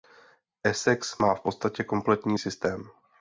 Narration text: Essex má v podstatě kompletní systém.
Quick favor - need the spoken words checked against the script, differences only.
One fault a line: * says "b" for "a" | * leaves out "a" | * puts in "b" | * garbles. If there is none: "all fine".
all fine